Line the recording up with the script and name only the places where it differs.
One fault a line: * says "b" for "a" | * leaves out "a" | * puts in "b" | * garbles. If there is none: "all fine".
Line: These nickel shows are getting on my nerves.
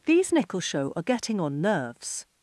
* says "show" for "shows"
* leaves out "my"